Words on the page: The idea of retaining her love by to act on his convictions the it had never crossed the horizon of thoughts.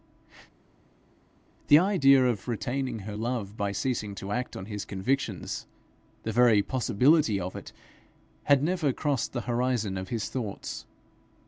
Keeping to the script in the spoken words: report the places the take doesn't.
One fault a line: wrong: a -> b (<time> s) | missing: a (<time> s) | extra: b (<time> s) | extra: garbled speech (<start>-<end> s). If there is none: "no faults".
extra: ceasing (3.7 s)
extra: very possibility of (6.3 s)
extra: his (10.1 s)